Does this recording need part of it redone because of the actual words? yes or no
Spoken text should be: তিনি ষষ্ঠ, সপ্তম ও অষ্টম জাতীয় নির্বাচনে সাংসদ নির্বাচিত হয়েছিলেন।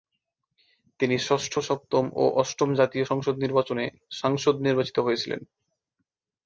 yes